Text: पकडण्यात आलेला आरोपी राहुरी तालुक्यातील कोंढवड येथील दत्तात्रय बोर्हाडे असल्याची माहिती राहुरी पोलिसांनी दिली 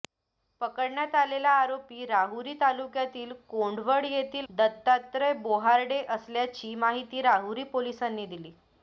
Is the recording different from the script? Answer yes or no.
no